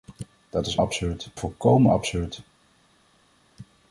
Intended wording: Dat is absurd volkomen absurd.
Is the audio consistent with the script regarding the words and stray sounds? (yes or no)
yes